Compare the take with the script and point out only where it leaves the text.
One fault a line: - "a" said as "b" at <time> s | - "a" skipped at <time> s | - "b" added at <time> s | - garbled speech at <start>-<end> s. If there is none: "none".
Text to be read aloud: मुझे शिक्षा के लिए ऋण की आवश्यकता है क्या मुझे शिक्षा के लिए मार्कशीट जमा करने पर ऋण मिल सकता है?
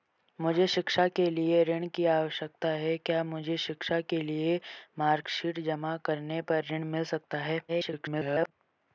- garbled speech at 7.7-8.5 s